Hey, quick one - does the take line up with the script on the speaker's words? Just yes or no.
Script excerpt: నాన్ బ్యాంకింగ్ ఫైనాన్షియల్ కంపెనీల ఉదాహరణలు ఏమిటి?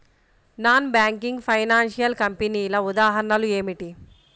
yes